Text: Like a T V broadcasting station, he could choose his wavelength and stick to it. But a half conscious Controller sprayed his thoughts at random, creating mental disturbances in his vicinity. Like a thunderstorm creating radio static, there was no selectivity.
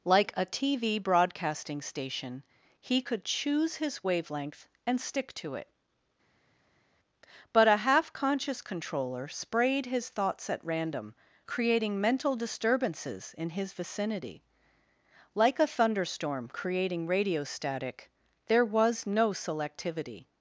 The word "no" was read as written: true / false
true